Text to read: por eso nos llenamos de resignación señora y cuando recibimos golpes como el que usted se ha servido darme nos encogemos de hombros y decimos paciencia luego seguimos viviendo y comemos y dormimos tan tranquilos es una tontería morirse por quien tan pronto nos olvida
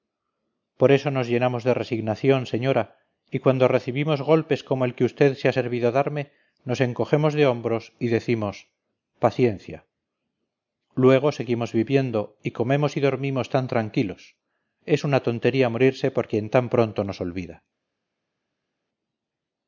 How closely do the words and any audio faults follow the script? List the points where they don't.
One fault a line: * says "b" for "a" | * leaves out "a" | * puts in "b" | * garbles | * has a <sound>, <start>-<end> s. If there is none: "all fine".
all fine